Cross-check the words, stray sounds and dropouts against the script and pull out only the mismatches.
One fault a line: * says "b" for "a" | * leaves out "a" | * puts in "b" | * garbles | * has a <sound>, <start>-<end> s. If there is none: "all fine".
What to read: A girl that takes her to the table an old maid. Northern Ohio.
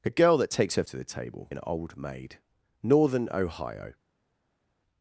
all fine